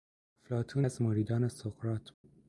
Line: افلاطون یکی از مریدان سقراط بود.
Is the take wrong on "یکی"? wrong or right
wrong